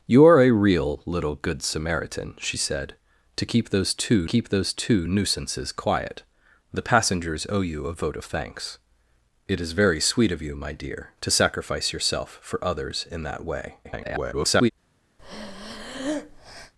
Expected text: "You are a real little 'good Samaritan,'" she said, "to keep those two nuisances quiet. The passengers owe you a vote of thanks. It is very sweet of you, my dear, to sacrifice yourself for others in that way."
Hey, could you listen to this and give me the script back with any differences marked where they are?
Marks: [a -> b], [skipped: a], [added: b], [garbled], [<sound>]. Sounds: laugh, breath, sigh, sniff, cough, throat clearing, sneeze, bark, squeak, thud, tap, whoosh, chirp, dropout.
"You are a real little 'good Samaritan,'" she said, "to keep those two [added: keep those two] nuisances quiet. The passengers owe you a vote of thanks. It is very sweet of you, my dear, to sacrifice yourself for others in that way." [garbled] [breath]